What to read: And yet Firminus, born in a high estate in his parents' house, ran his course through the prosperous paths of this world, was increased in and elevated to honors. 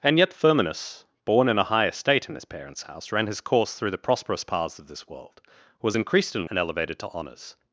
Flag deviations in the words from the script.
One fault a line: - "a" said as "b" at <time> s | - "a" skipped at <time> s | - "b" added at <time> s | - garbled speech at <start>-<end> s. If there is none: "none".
none